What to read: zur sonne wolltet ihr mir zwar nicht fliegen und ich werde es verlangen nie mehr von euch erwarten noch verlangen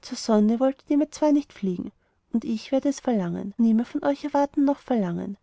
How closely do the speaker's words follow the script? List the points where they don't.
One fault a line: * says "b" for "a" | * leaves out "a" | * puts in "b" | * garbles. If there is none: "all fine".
all fine